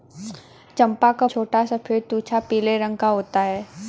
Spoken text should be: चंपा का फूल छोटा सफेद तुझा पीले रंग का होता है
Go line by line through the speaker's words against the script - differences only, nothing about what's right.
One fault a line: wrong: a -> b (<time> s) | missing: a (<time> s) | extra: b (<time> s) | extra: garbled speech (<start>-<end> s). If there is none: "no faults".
missing: फूल (1.3 s)